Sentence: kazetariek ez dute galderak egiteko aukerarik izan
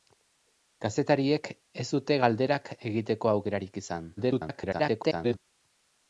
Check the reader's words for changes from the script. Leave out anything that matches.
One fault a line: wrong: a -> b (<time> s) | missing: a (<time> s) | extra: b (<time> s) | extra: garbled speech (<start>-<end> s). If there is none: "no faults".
extra: garbled speech (4.2-5.4 s)